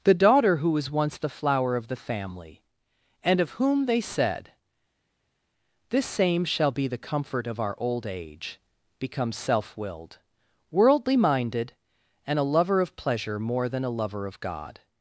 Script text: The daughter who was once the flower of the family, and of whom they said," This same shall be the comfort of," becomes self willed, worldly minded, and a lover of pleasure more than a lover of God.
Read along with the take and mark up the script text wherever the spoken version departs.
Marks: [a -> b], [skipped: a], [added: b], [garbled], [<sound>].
The daughter who was once the flower of the family, and of whom they said," This same shall be the comfort of," [added: our old age] becomes self willed, worldly minded, and a lover of pleasure more than a lover of God.